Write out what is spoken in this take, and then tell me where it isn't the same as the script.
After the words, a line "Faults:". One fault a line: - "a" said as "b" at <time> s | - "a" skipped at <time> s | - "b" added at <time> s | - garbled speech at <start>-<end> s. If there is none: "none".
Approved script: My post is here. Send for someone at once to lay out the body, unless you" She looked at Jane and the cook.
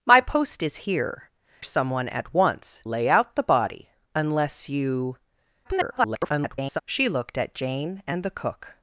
My post is here. Someone at once lay out the body, unless you" [garbled] She looked at Jane and the cook.
Faults:
- "Send for" skipped at 1.3 s
- "to" skipped at 2.8 s
- garbled speech at 5.6-6.8 s